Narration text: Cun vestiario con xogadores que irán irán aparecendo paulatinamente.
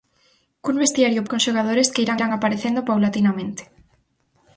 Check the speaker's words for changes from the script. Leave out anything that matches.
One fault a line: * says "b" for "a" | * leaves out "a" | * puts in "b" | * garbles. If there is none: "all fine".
all fine